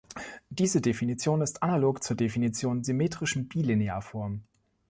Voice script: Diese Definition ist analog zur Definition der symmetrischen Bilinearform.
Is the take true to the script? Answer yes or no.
no